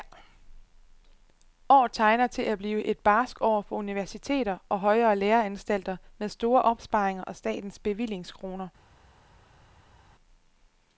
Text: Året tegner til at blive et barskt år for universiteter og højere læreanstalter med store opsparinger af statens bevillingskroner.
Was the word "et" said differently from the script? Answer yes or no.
no